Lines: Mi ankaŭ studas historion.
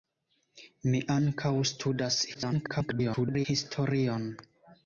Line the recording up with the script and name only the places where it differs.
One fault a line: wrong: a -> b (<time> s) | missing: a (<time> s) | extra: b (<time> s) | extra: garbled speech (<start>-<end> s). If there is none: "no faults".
extra: garbled speech (2.3-3.5 s)